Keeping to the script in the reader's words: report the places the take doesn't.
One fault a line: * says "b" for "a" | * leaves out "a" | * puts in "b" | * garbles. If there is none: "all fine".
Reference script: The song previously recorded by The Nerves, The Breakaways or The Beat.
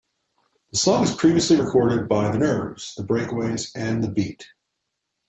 * puts in "was"
* says "and" for "or"